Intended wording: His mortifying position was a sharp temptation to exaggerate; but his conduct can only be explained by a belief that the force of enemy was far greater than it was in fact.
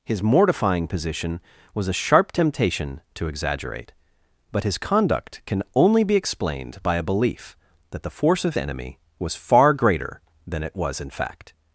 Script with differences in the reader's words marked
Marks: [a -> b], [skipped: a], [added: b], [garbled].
His mortifying position was a sharp temptation to exaggerate; but his conduct can only be explained by a belief that the force of enemy was far greater than it was in fact.